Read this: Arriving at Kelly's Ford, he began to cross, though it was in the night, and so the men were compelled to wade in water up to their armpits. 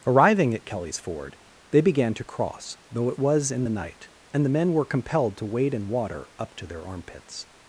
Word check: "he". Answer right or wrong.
wrong